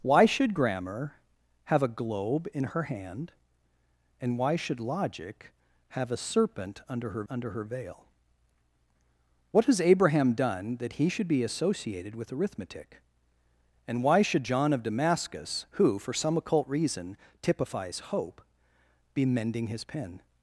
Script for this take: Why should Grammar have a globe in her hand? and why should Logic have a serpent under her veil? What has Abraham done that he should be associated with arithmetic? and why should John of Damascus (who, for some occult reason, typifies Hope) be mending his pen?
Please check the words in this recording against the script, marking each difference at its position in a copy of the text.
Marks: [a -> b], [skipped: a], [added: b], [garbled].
Why should Grammar have a globe in her hand? and why should Logic have a serpent under her [added: under her] veil? What has Abraham done that he should be associated with arithmetic? and why should John of Damascus (who, for some occult reason, typifies Hope) be mending his pen?